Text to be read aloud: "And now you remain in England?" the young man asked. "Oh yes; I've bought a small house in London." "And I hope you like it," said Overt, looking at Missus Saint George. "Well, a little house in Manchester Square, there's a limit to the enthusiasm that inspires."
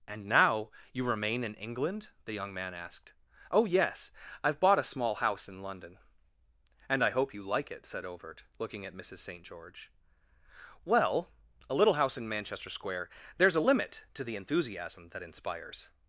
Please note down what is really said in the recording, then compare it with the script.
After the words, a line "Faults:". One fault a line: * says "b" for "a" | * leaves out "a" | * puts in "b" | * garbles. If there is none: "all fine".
"And now you remain in England?" the young man asked. "Oh yes; I've bought a small house in London." "And I hope you like it," said Overt, looking at Missus Saint George. "Well, a little house in Manchester Square, there's a limit to the enthusiasm that inspires."
Faults:
all fine